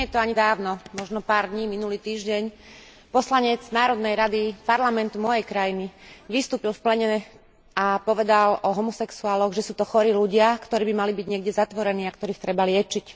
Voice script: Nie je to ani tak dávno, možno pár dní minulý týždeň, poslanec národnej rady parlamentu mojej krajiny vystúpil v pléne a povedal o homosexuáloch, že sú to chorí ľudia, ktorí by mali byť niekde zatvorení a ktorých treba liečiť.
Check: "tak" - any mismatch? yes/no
yes